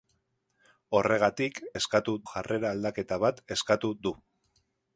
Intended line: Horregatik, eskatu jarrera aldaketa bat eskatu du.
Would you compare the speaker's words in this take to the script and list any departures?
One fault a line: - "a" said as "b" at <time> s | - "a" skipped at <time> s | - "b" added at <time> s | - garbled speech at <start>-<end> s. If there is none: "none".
none